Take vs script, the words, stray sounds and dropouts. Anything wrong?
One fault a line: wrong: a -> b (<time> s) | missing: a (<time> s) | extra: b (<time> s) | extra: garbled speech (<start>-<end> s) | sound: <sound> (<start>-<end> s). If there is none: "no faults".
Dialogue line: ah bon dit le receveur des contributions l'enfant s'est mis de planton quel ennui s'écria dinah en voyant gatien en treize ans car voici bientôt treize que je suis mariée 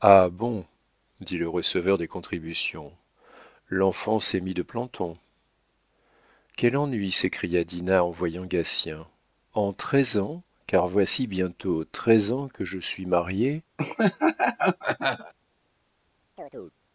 extra: ans (12.3 s)
sound: laugh (13.8-15.3 s)
sound: chirp (16.4-16.8 s)